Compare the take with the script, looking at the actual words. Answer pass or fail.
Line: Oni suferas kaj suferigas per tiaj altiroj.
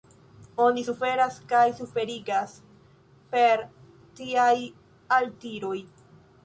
pass